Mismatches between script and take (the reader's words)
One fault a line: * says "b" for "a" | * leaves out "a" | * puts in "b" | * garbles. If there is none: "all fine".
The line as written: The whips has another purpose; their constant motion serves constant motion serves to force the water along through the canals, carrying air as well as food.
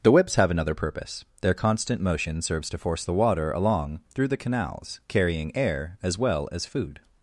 * says "have" for "has"
* leaves out "constant motion serves"